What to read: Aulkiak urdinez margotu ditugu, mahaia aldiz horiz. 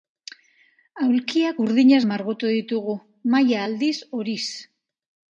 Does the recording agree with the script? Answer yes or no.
yes